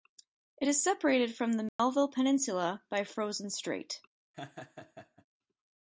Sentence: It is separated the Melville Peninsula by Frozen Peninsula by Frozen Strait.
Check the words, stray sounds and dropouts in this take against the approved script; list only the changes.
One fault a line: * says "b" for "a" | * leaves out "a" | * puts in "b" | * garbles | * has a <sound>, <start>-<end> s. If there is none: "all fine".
* puts in "from"
* has a dropout, 1.7-1.8 s
* leaves out "Peninsula by Frozen"
* has a laugh, 4.3-5.3 s